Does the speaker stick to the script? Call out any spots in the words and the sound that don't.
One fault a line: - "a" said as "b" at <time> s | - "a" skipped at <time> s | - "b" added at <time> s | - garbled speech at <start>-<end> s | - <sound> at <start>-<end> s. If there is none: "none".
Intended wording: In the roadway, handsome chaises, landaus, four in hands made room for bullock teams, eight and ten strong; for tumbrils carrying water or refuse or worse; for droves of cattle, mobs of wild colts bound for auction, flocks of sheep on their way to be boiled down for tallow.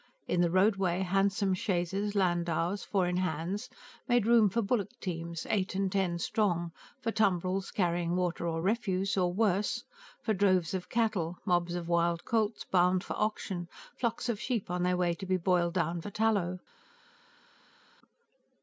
none